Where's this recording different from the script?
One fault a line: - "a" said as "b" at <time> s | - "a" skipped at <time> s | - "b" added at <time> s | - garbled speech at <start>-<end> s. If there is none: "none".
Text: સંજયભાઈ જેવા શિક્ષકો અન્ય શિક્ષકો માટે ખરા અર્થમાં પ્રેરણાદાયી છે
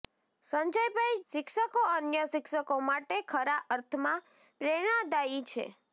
- "જેવા" skipped at 1.2 s